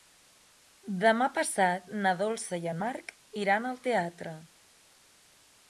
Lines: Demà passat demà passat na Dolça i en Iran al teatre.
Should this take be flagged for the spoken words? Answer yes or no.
yes